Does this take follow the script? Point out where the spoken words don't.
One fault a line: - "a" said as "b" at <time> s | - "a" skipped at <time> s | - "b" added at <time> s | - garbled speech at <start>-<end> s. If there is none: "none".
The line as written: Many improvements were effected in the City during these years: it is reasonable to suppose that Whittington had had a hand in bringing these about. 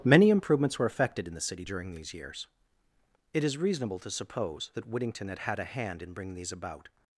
none